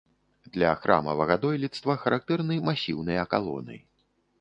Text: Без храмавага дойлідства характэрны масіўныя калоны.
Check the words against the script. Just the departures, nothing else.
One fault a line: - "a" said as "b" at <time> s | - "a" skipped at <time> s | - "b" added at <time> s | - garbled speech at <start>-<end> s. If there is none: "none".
- "Без" said as "Для" at 0.6 s